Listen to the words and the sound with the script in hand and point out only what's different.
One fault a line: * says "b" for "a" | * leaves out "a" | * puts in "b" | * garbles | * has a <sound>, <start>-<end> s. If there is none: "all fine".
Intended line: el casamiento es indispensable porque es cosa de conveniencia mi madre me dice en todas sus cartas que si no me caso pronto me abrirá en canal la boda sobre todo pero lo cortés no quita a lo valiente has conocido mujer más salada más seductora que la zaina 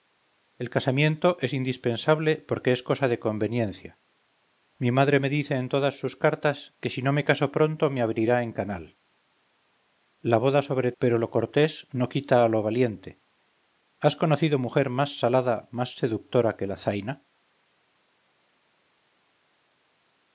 * leaves out "todo"